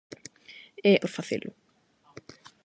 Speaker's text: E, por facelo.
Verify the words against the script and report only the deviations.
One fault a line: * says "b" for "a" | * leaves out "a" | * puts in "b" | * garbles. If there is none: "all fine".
all fine